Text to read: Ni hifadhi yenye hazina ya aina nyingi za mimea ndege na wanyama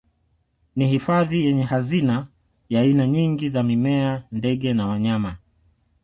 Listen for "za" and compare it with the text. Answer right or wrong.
right